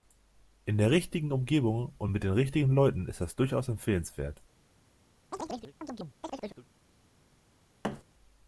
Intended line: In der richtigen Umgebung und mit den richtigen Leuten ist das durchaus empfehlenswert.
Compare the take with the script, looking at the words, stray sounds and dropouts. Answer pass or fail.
fail